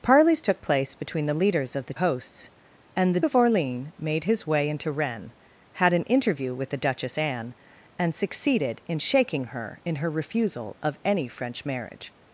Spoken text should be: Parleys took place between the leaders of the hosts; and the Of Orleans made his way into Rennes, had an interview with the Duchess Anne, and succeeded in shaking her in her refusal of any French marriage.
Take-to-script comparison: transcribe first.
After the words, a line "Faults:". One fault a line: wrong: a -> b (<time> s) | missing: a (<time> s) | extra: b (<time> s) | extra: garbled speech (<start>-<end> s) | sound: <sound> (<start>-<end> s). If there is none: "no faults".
Parleys took place between the leaders of the hosts; and the Of Orleans made his way into Rennes, had an interview with the Duchess Anne, and succeeded in shaking her in her refusal of any French marriage.
Faults:
no faults